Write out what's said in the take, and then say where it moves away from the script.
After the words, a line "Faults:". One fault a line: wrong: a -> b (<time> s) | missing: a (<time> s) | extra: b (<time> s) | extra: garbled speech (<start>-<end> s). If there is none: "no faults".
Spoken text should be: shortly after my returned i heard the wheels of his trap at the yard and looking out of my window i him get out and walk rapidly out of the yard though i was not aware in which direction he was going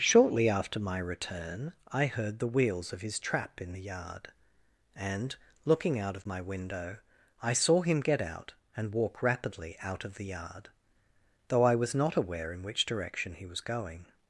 shortly after my return i heard the wheels of his trap in the yard and looking out of my window i saw him get out and walk rapidly out of the yard though i was not aware in which direction he was going
Faults:
wrong: returned -> return (1.0 s)
wrong: at -> in (3.6 s)
extra: saw (7.5 s)